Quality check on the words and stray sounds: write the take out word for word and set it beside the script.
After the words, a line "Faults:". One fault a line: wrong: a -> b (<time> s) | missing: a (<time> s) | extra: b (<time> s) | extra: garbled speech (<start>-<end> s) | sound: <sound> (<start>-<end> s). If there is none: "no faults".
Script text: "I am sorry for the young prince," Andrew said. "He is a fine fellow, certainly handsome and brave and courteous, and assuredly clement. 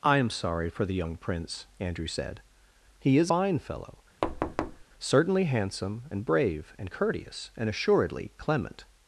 "I am sorry for the young prince," Andrew said. "He is fine fellow, certainly handsome and brave and courteous, and assuredly clement.
Faults:
missing: a (3.3 s)
sound: thud (4.2-4.8 s)